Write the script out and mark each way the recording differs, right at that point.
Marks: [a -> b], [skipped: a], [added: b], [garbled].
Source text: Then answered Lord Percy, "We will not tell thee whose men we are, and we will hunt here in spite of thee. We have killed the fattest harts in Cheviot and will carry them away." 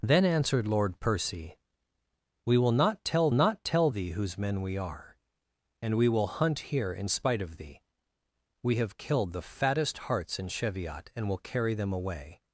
Then answered Lord Percy, "We will not tell [added: not tell] thee whose men we are, and we will hunt here in spite of thee. We have killed the fattest harts in Cheviot and will carry them away."